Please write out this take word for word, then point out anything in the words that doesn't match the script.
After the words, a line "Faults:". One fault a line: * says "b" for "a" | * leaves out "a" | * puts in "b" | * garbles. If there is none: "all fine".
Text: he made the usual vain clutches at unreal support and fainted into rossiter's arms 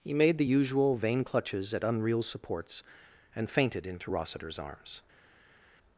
he made the usual vain clutches at unreal supports and fainted into rossiter's arms
Faults:
* says "supports" for "support"